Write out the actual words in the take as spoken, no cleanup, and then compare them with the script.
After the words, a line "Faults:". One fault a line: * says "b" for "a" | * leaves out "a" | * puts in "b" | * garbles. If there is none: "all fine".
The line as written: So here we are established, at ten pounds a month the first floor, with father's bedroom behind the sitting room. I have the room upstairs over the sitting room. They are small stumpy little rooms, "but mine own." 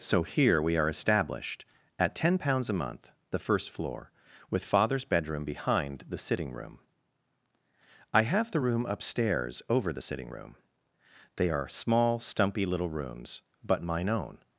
So here we are established, at ten pounds a month the first floor, with father's bedroom behind the sitting room. I have the room upstairs over the sitting room. They are small stumpy little rooms, "but mine own."
Faults:
all fine